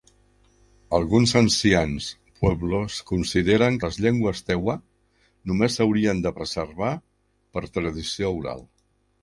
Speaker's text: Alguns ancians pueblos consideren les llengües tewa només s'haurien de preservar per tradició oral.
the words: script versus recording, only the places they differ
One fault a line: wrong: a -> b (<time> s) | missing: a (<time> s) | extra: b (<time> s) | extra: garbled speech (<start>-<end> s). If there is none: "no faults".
no faults